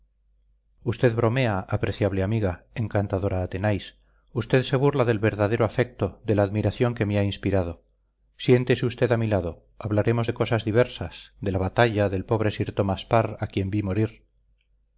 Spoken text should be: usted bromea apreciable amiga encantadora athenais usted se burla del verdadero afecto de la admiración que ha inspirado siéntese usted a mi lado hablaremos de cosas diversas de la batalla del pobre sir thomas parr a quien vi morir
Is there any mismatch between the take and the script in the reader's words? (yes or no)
yes